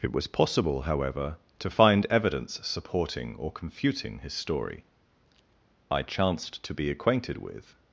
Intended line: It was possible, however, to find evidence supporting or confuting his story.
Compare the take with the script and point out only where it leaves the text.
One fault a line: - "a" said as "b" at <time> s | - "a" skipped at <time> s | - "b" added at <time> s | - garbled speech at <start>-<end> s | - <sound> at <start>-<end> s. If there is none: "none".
- "I chanced to be acquainted with" added at 5.9 s